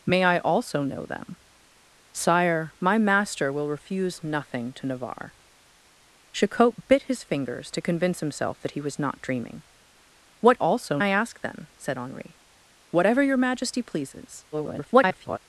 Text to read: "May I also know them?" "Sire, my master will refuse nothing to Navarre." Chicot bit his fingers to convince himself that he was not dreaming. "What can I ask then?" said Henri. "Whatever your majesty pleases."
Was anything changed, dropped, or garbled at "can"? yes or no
yes